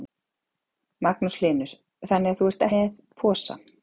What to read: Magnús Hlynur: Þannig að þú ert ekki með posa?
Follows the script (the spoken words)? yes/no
no